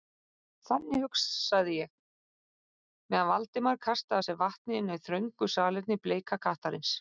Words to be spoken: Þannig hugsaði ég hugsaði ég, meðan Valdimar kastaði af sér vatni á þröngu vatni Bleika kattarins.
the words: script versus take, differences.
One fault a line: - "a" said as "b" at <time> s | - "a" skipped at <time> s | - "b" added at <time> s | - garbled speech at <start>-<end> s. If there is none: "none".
- "hugsaði ég" skipped at 1.9 s
- "inni" added at 4.8 s
- "vatni" said as "salerni" at 5.6 s